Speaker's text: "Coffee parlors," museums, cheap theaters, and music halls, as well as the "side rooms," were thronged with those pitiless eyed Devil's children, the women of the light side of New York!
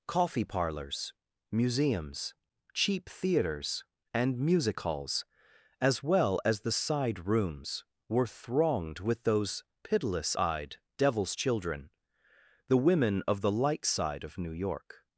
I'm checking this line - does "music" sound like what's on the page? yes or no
yes